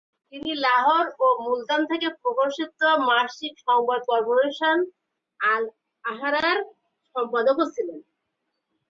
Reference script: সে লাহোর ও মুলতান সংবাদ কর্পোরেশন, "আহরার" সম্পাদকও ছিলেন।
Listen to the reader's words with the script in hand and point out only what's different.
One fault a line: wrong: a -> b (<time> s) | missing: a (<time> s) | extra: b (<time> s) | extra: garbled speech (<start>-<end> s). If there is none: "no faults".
wrong: সে -> তিনি (0.3 s)
extra: থেকে প্রকাশিত মাসিক (1.9 s)
extra: আল (5.4 s)